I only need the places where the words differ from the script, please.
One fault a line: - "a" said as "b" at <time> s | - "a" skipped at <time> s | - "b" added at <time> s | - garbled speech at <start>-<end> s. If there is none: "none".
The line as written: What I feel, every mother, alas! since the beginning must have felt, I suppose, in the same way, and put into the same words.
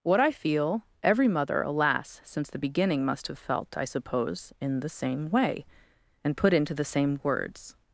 none